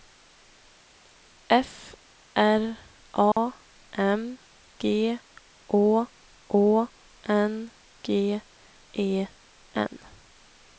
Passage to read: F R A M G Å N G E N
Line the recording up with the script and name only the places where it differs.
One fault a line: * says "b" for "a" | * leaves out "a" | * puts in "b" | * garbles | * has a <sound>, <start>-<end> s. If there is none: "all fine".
* has a dropout, 3.3-3.4 s
* puts in "Å"